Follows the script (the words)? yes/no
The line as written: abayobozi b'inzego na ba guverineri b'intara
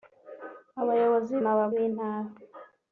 no